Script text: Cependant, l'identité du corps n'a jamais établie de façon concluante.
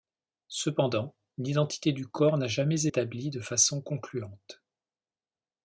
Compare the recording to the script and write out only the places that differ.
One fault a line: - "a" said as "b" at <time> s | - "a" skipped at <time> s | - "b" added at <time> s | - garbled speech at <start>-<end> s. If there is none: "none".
none